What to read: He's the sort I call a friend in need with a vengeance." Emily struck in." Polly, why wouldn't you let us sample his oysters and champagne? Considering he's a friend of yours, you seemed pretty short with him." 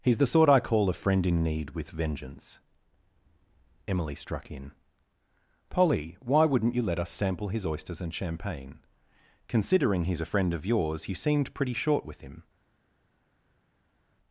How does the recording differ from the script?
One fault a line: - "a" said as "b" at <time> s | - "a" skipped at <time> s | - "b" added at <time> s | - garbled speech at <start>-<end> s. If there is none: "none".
- "a" skipped at 1.9 s